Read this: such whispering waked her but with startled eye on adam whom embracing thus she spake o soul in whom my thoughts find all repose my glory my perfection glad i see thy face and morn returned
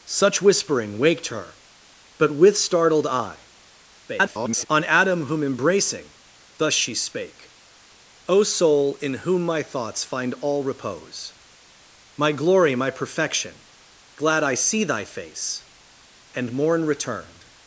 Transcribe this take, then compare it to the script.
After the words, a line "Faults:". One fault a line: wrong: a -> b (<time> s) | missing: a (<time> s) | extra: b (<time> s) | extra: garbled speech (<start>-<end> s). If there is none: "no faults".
such whispering waked her but with startled eye [garbled] on adam whom embracing thus she spake o soul in whom my thoughts find all repose my glory my perfection glad i see thy face and morn returned
Faults:
extra: garbled speech (4.1-4.7 s)